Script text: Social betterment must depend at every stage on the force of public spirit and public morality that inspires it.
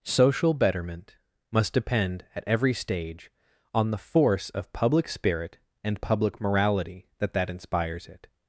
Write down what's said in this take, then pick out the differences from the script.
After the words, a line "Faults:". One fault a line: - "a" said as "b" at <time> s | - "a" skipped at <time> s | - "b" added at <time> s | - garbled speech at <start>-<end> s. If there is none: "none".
Social betterment must depend at every stage on the force of public spirit and public morality that that inspires it.
Faults:
- "that" added at 7.3 s